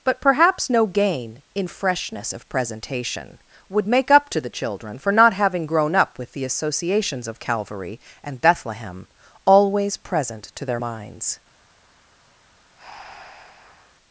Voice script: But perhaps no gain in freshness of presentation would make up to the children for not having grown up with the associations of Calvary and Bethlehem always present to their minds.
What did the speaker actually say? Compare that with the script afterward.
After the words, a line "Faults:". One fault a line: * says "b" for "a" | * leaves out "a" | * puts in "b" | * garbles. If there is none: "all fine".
But perhaps no gain in freshness of presentation would make up to the children for not having grown up with the associations of Calvary and Bethlehem always present to their minds.
Faults:
all fine